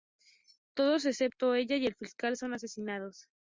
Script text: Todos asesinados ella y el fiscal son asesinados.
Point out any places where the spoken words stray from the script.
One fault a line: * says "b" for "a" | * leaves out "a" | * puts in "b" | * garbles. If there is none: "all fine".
* says "excepto" for "asesinados"